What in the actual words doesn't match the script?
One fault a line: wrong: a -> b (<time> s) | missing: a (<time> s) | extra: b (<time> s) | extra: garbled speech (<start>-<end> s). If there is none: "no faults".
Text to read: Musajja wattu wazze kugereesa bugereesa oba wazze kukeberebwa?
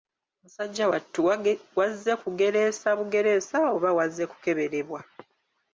no faults